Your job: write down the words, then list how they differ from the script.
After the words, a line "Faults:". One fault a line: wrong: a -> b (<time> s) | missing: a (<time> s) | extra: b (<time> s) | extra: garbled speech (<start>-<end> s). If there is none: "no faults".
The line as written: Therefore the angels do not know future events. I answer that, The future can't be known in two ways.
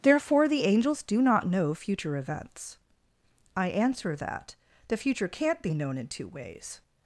Therefore the angels do not know future events. I answer that, The future can't be known in two ways.
Faults:
no faults